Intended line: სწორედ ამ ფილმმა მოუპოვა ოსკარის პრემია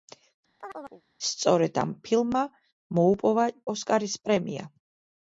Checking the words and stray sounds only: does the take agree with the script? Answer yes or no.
no